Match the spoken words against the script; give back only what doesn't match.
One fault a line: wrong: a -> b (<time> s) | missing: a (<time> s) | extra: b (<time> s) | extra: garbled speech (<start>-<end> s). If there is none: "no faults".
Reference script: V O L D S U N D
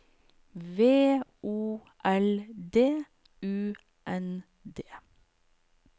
missing: S (3.0 s)